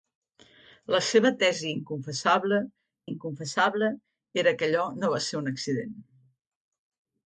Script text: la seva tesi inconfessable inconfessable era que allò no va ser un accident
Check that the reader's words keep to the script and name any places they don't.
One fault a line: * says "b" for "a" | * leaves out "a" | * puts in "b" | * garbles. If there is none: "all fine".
all fine